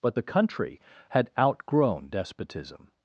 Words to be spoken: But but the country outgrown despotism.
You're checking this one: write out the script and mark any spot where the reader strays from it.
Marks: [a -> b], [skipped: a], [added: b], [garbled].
But [skipped: but] the country [added: had] outgrown despotism.